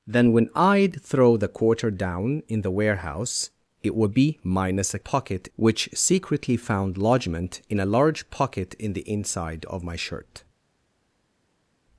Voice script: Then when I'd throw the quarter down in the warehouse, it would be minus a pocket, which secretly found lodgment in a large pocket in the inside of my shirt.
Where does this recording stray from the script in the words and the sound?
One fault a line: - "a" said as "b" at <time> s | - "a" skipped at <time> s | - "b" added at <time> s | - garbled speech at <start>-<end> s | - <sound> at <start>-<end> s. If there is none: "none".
none